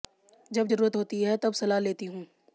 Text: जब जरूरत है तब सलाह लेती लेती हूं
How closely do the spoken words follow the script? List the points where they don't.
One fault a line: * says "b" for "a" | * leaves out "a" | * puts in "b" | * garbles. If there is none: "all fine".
* puts in "होती"
* leaves out "लेती"